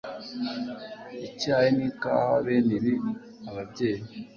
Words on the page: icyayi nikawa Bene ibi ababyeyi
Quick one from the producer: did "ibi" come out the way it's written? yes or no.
yes